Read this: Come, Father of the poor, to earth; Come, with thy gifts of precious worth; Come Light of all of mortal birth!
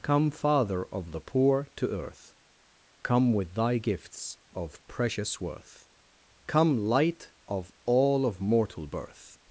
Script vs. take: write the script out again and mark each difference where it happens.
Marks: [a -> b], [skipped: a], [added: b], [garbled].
Come, Father of the poor, to earth; Come, with thy gifts of precious worth; Come Light of all of mortal birth!